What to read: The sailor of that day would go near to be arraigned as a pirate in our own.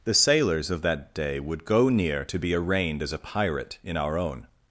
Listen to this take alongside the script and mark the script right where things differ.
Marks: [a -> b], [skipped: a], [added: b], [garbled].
The [sailor -> sailors] of that day would go near to be arraigned as a pirate in our own.